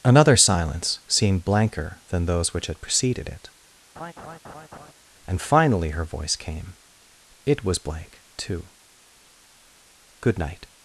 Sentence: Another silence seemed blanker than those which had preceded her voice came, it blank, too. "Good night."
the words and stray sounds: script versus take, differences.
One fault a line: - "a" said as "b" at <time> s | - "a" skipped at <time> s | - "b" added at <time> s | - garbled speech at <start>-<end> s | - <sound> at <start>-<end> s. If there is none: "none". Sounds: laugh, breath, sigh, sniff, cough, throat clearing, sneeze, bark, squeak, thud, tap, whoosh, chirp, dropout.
- "it and finally" added at 3.3 s
- laugh at 4.0-4.9 s
- "was" added at 7.6 s